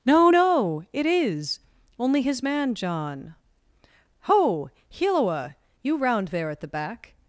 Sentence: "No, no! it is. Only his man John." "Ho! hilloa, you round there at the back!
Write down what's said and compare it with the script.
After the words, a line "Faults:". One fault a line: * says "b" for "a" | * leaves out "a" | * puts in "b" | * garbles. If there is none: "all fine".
"No, no! it is. Only his man John." "Ho! hilloa, you round there at the back!
Faults:
all fine